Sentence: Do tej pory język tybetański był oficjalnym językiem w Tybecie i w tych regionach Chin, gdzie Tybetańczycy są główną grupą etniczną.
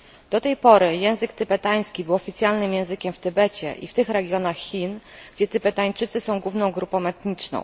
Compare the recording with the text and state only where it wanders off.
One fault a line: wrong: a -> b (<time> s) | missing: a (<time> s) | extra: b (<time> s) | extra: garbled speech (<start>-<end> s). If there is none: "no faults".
no faults